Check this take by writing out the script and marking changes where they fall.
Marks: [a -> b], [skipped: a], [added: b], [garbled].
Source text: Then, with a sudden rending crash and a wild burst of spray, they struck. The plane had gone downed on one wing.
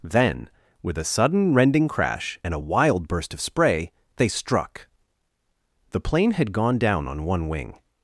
Then, with a sudden rending crash and a wild burst of spray, they struck. The plane had gone [downed -> down] on one wing.